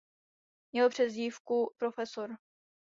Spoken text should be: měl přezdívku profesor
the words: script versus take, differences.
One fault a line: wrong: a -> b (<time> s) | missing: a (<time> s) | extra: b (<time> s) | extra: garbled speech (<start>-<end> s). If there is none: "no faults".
no faults